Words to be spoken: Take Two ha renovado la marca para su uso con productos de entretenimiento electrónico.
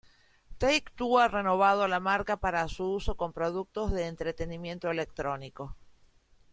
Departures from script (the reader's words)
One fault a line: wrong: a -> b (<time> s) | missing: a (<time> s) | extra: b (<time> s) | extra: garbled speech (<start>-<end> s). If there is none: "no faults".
no faults